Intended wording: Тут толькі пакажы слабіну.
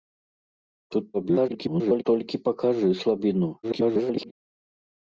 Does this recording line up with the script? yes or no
no